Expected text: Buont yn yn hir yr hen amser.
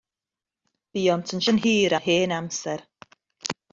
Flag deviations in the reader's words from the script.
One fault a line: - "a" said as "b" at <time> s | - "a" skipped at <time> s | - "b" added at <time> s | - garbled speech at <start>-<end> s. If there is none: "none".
none